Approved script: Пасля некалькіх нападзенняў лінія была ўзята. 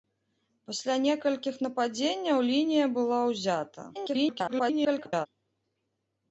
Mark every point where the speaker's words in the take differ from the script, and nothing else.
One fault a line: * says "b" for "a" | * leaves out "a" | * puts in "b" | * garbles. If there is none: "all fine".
* garbles